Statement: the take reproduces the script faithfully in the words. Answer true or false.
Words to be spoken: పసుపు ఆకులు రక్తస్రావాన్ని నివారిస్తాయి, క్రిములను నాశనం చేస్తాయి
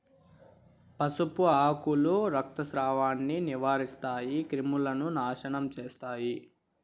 true